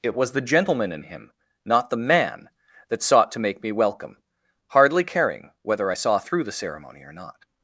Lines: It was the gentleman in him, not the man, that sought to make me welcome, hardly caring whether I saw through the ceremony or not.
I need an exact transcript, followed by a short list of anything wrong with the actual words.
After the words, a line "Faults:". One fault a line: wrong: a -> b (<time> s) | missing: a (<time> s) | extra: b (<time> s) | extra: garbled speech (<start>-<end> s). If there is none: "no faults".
It was the gentleman in him, not the man, that sought to make me welcome, hardly caring whether I saw through the ceremony or not.
Faults:
no faults